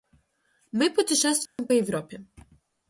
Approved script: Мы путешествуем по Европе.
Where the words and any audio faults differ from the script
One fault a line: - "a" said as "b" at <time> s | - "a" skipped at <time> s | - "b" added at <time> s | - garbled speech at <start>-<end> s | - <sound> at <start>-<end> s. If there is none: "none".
- dropout at 1.5-1.6 s